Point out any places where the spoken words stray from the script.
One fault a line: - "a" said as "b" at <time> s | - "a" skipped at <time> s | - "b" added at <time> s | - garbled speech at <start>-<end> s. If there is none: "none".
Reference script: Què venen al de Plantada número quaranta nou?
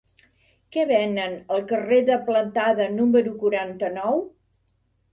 - "carrer" added at 1.7 s